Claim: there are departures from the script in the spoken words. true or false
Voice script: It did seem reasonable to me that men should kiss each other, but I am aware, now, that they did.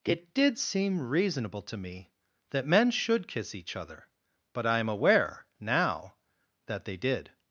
false